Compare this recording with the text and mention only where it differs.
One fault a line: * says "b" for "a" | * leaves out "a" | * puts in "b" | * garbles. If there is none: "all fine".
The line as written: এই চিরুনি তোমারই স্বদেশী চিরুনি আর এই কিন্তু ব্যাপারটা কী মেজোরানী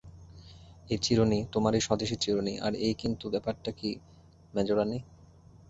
all fine